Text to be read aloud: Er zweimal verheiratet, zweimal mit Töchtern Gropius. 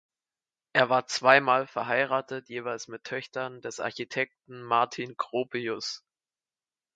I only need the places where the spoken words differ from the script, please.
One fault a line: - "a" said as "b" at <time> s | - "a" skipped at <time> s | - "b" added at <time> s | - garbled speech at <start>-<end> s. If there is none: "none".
- "war" added at 0.9 s
- "zweimal" said as "jeweils" at 2.5 s
- "des Architekten Martin" added at 3.6 s